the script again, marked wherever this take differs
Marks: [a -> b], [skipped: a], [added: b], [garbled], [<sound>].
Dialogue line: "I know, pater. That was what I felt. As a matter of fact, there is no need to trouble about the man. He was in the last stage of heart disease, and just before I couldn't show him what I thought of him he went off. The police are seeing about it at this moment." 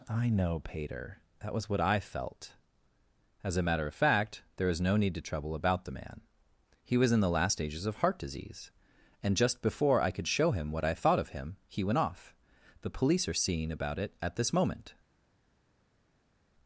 "I know, pater. That was what I felt. As a matter of fact, there is no need to trouble about the man. He was in the last [stage -> stages] of heart disease, and just before I [couldn't -> could] show him what I thought of him he went off. The police are seeing about it at this moment."